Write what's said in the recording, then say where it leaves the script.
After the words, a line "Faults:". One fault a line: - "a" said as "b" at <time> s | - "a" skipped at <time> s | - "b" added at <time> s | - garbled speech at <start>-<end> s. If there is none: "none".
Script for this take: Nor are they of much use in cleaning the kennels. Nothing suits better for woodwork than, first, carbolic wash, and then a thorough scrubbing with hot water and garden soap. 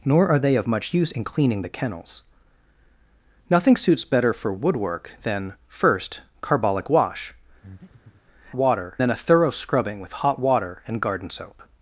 Nor are they of much use in cleaning the kennels. Nothing suits better for woodwork than, first, carbolic wash, water then a thorough scrubbing with hot water and garden soap.
Faults:
- "and" said as "water" at 8.5 s